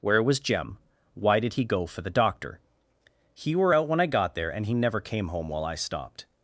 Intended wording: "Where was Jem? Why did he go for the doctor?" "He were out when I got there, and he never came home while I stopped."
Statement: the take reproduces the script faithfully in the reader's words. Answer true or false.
true